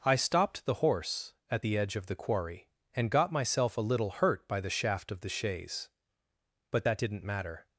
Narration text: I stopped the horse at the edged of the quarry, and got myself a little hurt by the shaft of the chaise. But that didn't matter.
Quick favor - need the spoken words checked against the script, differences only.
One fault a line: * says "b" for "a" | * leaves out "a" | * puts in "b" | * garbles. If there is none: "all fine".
* says "edge" for "edged"